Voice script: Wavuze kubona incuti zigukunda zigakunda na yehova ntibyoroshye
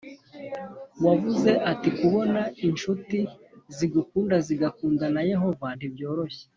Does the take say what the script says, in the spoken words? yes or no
no